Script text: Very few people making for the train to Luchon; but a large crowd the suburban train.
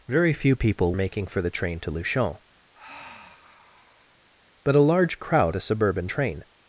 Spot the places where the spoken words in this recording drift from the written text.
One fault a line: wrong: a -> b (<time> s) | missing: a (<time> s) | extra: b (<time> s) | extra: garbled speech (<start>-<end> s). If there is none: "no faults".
no faults